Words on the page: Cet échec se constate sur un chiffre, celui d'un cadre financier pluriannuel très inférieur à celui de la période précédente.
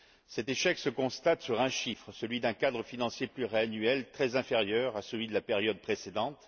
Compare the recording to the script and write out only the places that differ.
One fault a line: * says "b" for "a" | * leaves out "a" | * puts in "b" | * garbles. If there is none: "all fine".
all fine